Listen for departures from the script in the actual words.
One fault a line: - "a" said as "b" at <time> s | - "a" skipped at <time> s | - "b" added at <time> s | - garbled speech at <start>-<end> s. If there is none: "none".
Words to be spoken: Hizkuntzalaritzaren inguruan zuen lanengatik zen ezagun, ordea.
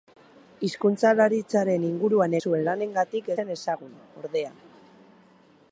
none